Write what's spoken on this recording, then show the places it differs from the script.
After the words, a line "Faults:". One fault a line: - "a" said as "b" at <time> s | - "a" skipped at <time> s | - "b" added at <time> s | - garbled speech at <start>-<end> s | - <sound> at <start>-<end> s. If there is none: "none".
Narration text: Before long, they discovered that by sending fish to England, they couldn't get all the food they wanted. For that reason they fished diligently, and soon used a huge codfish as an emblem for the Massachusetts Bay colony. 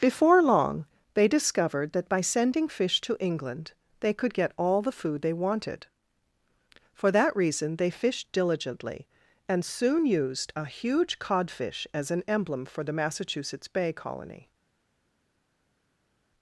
Before long, they discovered that by sending fish to England, they could get all the food they wanted. For that reason they fished diligently, and soon used a huge codfish as an emblem for the Massachusetts Bay colony.
Faults:
- "couldn't" said as "could" at 4.2 s